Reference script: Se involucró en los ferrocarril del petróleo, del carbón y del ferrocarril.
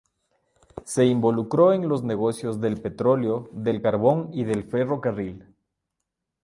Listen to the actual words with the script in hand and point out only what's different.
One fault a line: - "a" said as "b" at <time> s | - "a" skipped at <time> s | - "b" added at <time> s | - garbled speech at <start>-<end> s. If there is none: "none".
- "ferrocarril" said as "negocios" at 2.0 s